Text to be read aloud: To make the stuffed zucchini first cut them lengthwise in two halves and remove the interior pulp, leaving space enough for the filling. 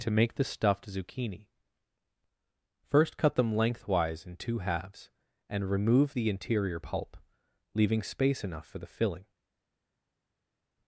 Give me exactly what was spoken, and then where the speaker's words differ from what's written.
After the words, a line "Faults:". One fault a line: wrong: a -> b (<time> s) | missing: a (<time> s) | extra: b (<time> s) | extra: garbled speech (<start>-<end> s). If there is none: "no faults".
To make the stuffed zucchini first cut them lengthwise in two halves and remove the interior pulp, leaving space enough for the filling.
Faults:
no faults